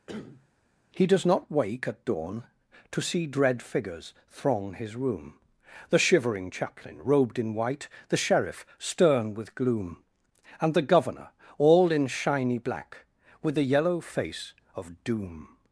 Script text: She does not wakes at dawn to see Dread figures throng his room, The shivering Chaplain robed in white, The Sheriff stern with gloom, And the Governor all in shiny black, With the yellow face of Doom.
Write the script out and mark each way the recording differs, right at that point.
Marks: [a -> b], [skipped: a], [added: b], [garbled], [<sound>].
[cough] [She -> He] does not [wakes -> wake] at dawn to see Dread figures throng his room, The shivering Chaplain robed in white, The Sheriff stern with gloom, And the Governor all in shiny black, With the yellow face of Doom.